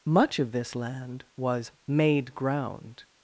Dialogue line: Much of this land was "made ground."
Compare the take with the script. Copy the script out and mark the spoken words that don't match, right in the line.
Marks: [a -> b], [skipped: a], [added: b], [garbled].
Much of this land was "made ground."